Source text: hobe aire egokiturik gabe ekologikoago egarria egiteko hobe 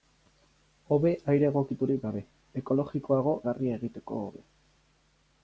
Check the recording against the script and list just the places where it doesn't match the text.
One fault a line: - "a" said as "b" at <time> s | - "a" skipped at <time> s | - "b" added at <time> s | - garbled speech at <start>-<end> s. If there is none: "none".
none